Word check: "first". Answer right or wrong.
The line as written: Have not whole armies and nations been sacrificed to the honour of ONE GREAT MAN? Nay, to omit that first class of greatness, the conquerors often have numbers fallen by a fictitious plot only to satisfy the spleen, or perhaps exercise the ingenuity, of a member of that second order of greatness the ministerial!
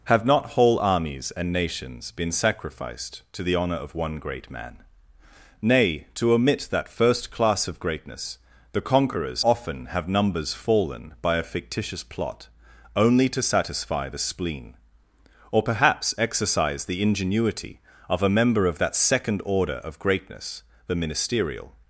right